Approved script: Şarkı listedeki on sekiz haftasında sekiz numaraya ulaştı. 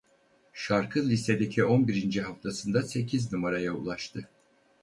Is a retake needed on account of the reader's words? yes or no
yes